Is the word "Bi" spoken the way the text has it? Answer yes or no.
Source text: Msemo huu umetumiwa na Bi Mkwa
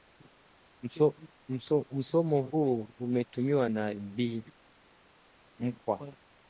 yes